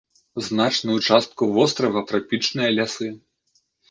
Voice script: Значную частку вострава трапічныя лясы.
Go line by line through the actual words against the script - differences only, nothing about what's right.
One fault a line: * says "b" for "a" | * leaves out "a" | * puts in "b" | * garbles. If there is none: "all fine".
all fine